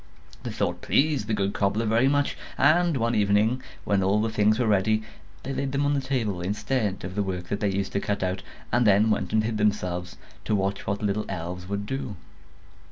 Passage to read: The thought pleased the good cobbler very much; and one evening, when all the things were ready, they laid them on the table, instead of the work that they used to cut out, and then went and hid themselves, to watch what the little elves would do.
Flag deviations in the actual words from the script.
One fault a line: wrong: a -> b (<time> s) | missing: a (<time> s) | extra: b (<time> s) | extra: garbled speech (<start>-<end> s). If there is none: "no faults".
no faults